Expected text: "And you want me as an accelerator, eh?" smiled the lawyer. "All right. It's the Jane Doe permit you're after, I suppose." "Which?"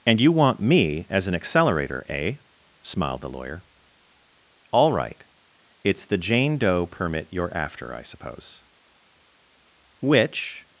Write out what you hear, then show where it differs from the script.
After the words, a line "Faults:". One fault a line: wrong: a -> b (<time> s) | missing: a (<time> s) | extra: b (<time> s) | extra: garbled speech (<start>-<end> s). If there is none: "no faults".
"And you want me as an accelerator, eh?" smiled the lawyer. "All right. It's the Jane Doe permit you're after, I suppose." "Which?"
Faults:
no faults